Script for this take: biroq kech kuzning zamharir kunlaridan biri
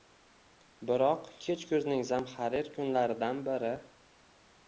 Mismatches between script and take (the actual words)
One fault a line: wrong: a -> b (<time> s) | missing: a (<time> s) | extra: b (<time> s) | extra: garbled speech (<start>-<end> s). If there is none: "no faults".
no faults